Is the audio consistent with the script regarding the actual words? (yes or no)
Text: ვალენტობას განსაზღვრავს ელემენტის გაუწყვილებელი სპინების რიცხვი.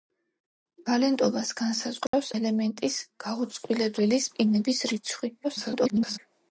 no